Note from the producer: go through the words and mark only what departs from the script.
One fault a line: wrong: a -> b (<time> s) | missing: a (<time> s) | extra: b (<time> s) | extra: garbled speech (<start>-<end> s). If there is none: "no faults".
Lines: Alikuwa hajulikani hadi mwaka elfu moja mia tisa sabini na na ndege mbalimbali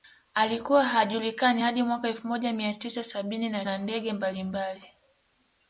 no faults